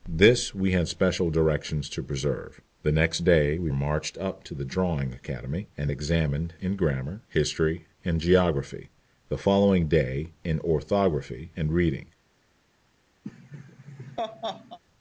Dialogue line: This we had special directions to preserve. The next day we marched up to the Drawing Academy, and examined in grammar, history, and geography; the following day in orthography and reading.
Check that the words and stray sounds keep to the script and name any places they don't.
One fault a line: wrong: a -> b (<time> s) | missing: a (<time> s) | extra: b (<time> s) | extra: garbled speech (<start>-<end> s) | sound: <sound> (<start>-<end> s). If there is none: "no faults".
sound: laugh (13.2-14.8 s)